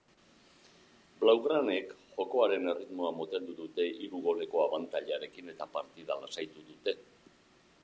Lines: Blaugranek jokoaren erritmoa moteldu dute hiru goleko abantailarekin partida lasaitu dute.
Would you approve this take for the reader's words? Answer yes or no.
no